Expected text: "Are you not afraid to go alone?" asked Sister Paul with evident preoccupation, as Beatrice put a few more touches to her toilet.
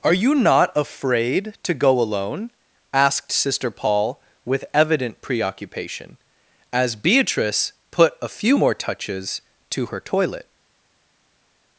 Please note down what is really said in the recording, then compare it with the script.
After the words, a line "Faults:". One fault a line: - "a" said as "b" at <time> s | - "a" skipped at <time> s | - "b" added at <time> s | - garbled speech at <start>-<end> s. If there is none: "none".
"Are you not afraid to go alone?" asked Sister Paul with evident preoccupation, as Beatrice put a few more touches to her toilet.
Faults:
none